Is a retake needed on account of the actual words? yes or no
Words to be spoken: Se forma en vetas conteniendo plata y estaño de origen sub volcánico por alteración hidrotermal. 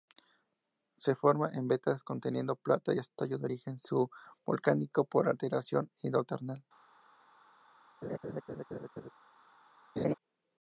no